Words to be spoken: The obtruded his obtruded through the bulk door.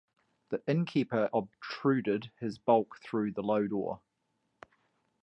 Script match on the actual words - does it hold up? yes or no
no